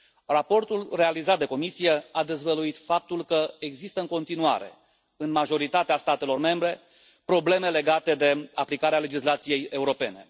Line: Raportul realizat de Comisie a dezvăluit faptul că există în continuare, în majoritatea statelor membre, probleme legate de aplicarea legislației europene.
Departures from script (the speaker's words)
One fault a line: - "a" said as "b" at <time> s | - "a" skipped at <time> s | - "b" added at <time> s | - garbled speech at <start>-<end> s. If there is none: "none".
none